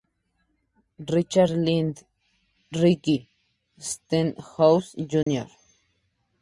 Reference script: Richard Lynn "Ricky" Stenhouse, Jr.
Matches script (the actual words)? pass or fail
pass